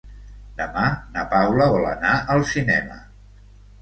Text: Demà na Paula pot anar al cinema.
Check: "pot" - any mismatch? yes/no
yes